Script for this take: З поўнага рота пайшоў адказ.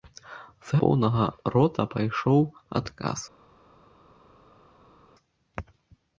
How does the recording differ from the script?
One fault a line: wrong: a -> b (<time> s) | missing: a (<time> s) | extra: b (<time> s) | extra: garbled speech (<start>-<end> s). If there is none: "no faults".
no faults